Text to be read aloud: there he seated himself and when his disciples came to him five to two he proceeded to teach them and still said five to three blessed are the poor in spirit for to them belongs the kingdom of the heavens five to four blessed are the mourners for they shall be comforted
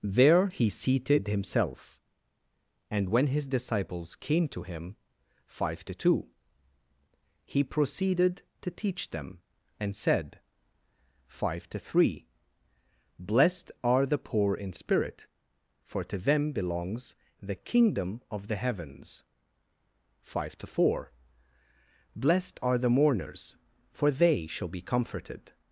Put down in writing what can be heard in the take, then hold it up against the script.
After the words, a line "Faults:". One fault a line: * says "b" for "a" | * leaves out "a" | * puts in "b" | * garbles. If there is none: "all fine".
there he seated himself and when his disciples came to him five to two he proceeded to teach them and said five to three blessed are the poor in spirit for to them belongs the kingdom of the heavens five to four blessed are the mourners for they shall be comforted
Faults:
* leaves out "still"